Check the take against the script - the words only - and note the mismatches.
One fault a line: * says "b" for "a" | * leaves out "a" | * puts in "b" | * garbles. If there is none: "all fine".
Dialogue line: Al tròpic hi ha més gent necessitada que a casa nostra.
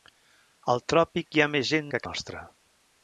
* leaves out "necessitada"
* leaves out "casa"